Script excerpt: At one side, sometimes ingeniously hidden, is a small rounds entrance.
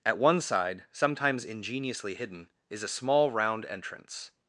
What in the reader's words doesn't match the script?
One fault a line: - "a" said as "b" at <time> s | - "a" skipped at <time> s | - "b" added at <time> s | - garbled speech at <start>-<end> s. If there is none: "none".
- "rounds" said as "round" at 3.3 s